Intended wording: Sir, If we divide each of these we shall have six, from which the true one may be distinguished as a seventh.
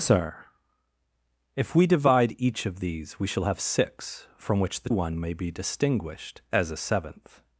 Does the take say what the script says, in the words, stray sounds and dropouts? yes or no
no